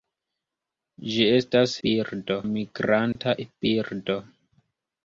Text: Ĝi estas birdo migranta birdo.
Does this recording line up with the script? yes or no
yes